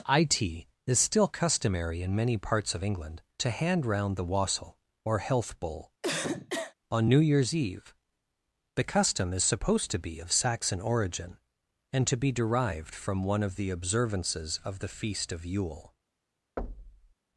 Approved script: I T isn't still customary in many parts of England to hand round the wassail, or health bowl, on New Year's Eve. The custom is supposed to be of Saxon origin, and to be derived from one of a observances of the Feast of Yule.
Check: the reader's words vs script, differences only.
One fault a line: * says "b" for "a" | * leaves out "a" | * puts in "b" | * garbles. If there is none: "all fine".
* says "is" for "isn't"
* says "the" for "a"